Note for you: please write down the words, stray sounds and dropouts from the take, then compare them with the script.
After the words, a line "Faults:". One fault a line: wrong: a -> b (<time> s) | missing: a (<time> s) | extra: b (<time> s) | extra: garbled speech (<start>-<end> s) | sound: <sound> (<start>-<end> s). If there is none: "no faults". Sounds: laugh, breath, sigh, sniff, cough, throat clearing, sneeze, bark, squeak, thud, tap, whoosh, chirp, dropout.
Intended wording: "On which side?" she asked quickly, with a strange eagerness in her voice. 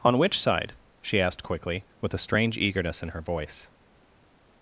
"On which side?" she asked quickly, with a strange eagerness in her voice.
Faults:
no faults